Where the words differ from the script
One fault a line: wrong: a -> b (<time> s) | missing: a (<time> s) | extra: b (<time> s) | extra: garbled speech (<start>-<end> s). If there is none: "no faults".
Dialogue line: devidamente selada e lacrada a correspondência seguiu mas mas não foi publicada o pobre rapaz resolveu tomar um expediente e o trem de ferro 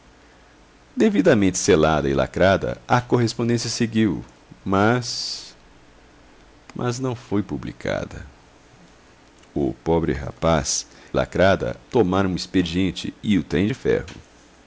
wrong: resolveu -> lacrada (11.1 s)